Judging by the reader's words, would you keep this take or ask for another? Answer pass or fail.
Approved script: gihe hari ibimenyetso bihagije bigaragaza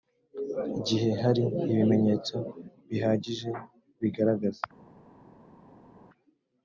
pass